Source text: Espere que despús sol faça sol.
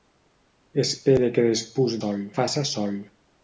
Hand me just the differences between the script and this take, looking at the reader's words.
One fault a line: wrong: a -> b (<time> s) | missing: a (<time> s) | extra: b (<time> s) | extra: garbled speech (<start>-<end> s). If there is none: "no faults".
no faults